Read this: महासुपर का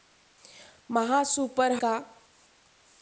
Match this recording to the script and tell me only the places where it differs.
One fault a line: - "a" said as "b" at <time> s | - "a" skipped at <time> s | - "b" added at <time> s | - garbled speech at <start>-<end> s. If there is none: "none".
none